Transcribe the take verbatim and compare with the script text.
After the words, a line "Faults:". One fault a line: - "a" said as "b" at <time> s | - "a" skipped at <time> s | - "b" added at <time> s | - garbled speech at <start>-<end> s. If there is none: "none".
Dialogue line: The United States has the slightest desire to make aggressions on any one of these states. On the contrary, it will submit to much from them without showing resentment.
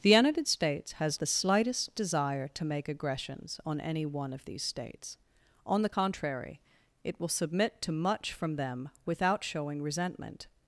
The United States has the slightest desire to make aggressions on any one of these states. On the contrary, it will submit to much from them without showing resentment.
Faults:
none